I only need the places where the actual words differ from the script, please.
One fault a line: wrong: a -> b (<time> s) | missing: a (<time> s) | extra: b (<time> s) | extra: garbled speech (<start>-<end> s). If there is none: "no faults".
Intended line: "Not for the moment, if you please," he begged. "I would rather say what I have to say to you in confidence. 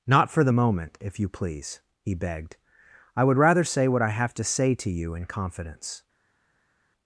no faults